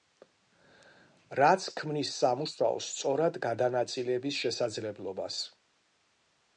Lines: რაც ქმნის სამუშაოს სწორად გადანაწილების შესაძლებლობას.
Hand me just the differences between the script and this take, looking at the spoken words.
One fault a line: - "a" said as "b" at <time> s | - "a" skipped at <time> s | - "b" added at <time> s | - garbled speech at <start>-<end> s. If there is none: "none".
none